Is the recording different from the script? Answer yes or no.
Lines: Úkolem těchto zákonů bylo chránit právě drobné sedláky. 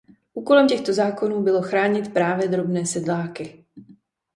no